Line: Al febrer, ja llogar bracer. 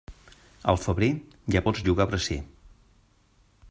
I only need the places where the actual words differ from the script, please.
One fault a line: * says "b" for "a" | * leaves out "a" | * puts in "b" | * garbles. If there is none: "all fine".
* puts in "pots"